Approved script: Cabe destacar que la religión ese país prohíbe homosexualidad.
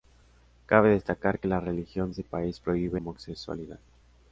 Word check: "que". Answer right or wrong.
right